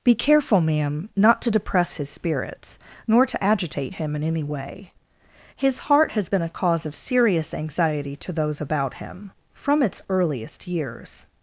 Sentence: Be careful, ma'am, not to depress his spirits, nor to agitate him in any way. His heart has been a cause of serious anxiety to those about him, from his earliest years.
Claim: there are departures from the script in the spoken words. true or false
true